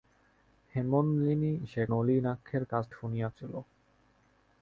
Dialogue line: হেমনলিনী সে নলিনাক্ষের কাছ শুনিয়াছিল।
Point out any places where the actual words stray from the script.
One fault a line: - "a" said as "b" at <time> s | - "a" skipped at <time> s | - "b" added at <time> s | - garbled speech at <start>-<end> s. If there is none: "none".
none